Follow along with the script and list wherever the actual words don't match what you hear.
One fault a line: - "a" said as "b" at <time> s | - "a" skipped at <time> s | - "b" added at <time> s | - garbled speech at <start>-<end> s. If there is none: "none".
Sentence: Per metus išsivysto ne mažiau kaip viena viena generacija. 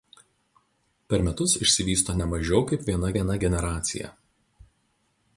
none